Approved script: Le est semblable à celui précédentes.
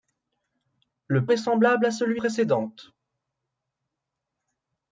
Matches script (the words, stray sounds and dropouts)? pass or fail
pass